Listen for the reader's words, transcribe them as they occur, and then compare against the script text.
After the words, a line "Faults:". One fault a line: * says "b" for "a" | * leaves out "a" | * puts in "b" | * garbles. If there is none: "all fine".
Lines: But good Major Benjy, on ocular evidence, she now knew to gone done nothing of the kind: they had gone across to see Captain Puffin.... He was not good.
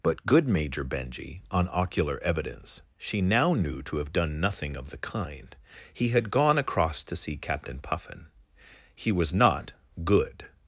But good Major Benjy, on ocular evidence, she now knew to have done nothing of the kind: he had gone across to see Captain Puffin.... He was not good.
Faults:
* says "have" for "gone"
* says "he" for "they"